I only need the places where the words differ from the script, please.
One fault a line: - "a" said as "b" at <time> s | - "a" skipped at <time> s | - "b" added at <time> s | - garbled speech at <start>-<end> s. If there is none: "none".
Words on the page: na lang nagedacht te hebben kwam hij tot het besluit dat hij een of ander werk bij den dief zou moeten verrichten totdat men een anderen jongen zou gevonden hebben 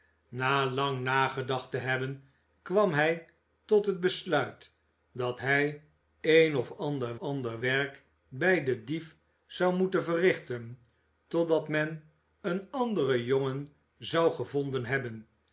- "ander" added at 7.1 s